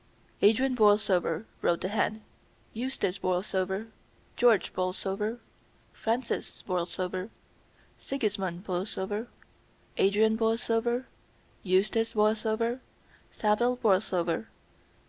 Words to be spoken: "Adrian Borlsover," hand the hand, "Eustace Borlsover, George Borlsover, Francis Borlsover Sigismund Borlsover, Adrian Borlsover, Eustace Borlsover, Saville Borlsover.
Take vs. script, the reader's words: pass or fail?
fail